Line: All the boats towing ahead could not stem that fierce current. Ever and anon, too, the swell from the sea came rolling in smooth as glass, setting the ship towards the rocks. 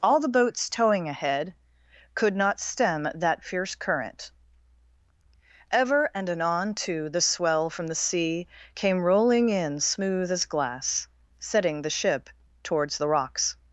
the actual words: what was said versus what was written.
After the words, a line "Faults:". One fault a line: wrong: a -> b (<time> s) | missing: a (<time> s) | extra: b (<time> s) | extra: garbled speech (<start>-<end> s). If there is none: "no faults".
All the boats towing ahead could not stem that fierce current. Ever and anon, too, the swell from the sea came rolling in smooth as glass, setting the ship towards the rocks.
Faults:
no faults